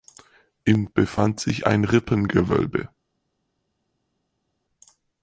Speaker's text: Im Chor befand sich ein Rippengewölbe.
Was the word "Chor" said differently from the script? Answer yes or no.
yes